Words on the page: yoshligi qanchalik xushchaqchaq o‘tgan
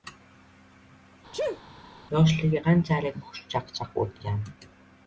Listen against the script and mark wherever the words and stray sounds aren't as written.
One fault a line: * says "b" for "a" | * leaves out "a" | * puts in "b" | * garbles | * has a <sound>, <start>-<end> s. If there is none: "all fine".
* has a sneeze, 1.3-1.6 s